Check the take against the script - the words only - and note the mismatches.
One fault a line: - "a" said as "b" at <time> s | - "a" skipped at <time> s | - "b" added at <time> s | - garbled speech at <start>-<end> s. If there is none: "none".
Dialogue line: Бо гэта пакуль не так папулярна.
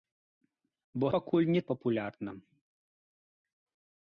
- "гэта" skipped at 1.1 s
- "так" skipped at 1.6 s